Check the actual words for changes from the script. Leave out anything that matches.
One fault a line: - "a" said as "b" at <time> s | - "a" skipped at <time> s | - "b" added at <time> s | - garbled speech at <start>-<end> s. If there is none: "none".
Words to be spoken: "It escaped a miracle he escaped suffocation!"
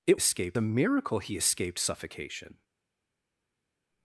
none